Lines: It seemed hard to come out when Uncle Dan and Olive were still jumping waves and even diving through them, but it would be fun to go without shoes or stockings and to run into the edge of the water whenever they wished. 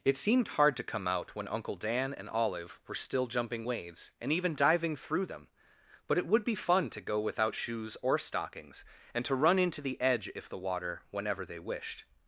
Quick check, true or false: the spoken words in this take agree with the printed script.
false